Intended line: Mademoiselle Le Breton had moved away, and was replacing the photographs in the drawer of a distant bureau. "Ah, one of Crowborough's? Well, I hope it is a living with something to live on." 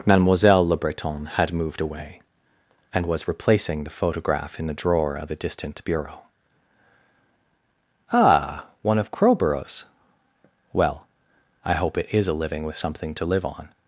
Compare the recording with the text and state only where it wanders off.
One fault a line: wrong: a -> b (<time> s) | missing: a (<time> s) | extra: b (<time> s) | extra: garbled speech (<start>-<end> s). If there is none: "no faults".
wrong: photographs -> photograph (3.9 s)